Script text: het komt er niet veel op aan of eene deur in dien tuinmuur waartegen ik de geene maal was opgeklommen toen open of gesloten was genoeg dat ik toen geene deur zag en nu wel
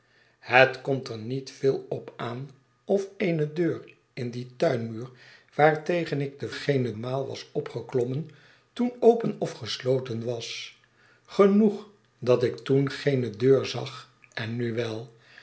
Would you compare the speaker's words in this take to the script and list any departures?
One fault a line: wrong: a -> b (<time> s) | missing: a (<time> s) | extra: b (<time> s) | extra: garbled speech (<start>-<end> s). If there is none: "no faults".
no faults